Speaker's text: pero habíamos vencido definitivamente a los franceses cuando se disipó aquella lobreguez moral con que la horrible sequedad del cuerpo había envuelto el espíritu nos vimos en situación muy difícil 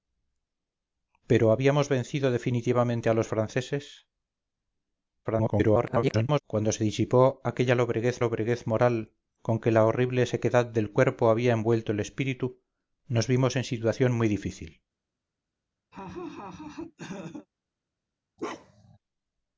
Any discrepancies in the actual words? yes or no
yes